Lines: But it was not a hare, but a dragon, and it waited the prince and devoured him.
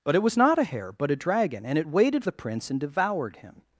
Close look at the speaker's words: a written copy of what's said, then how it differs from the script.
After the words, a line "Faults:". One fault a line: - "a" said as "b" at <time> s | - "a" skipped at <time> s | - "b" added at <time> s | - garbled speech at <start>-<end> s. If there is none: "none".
But it was not a hare, but a dragon, and it waited the prince and devoured him.
Faults:
none